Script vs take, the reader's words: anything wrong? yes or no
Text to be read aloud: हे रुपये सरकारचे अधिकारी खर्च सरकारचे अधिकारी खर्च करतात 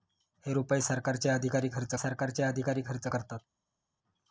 no